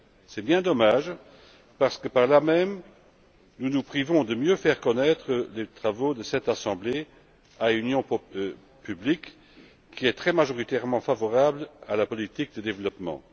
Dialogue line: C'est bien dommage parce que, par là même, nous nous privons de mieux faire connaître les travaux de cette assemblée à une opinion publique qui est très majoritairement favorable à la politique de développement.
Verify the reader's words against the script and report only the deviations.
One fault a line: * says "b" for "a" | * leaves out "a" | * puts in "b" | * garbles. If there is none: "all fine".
all fine